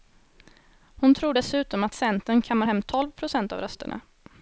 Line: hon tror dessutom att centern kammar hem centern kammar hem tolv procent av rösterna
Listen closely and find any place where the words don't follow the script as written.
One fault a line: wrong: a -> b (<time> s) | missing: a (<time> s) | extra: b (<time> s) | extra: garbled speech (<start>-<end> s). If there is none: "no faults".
missing: centern kammar hem (2.8 s)